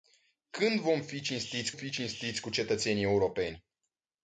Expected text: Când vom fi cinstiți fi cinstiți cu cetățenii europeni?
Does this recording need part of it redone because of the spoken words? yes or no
no